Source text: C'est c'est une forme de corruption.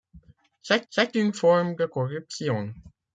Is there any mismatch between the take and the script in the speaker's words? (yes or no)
no